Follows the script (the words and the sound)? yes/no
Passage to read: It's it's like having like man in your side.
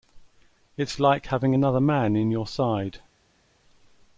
no